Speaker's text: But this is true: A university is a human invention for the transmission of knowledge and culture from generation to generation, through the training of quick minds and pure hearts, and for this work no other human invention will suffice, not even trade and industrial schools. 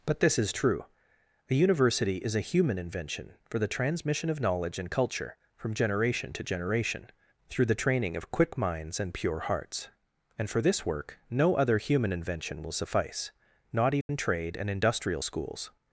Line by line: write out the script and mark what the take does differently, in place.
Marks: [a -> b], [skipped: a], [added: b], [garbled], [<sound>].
But this is true: A university is a human invention for the transmission of knowledge and culture from generation to generation, through the training of quick minds and pure hearts, and for this work no other human invention will suffice, not even [dropout] trade and industrial schools.